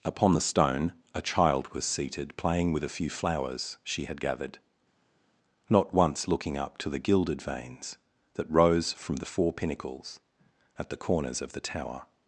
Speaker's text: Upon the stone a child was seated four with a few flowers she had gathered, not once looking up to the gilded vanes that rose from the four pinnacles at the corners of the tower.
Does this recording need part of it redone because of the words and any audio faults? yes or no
yes